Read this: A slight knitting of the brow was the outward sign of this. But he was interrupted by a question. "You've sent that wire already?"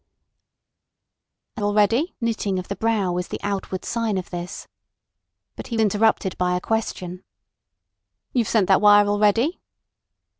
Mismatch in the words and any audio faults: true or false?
true